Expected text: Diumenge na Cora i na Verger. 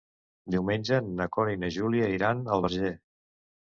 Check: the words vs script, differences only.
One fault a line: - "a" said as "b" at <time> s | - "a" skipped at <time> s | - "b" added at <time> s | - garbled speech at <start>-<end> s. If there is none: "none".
- "Júlia iran al" added at 1.8 s